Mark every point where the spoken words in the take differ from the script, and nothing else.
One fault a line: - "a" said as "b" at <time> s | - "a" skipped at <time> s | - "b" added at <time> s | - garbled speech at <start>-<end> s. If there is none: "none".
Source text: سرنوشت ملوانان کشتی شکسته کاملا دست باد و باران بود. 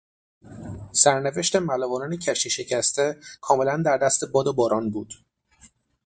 - "در" added at 3.9 s